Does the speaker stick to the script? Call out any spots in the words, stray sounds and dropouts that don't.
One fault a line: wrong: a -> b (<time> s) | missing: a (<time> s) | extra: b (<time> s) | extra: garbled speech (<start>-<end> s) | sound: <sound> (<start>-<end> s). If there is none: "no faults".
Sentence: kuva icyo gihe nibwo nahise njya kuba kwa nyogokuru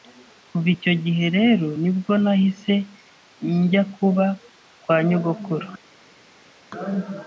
extra: rero (1.4 s)